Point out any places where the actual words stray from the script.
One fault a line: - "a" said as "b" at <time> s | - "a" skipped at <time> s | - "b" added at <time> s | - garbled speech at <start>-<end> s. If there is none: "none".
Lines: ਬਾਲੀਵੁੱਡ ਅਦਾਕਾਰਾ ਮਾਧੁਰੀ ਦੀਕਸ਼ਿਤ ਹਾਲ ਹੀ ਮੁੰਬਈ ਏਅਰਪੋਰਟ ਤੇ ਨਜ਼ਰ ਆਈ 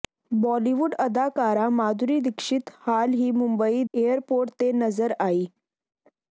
none